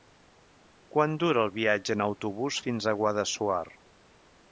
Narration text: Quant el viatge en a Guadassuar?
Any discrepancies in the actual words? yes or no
yes